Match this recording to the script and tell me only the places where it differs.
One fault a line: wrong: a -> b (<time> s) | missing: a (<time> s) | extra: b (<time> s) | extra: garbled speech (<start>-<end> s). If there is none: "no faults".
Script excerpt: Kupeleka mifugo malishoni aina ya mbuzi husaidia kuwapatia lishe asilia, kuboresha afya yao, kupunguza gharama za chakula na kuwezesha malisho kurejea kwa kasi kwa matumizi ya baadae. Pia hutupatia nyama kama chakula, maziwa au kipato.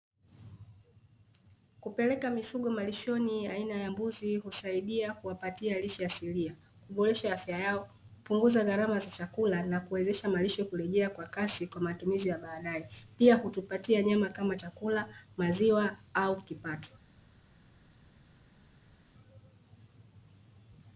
no faults